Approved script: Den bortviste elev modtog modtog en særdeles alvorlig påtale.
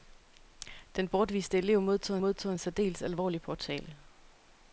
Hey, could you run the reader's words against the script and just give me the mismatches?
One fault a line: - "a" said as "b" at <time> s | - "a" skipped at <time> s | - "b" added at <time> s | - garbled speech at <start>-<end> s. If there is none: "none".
none